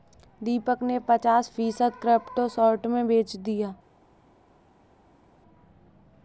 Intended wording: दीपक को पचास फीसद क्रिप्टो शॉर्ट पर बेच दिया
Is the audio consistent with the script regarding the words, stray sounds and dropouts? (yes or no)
no